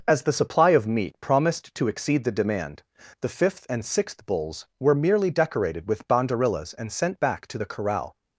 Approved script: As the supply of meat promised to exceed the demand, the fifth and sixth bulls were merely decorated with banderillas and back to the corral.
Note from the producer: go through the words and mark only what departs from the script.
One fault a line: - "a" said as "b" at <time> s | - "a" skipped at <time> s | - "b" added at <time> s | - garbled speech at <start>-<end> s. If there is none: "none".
- "sent" added at 6.9 s